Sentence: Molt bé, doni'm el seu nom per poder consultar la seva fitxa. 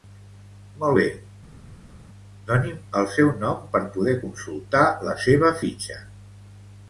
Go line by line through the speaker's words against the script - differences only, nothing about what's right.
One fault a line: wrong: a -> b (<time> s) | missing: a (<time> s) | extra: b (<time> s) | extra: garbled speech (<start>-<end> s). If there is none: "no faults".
no faults